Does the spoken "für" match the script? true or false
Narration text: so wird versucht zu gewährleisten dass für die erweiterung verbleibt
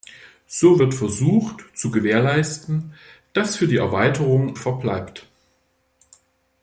true